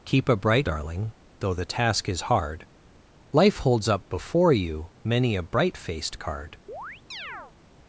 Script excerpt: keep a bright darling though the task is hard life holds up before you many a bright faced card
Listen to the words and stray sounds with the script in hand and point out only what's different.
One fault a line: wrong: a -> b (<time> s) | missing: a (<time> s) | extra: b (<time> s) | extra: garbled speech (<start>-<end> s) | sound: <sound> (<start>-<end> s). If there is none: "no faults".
sound: chirp (6.7-7.5 s)